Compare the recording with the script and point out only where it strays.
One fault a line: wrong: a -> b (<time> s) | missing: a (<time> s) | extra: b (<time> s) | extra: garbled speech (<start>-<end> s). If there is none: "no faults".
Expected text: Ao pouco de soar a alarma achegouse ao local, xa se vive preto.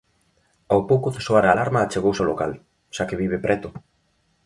wrong: se -> que (3.1 s)